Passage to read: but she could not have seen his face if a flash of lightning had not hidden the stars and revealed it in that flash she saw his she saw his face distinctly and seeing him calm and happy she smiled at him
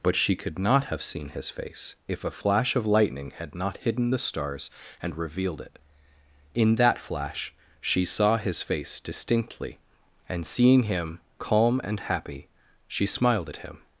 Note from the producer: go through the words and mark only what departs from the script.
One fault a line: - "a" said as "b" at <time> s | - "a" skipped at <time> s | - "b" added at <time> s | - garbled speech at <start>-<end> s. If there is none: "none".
- "she saw his" skipped at 8.6 s